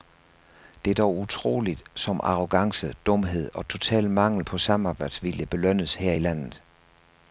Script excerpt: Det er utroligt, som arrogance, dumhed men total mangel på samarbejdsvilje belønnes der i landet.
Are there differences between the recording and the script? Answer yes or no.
yes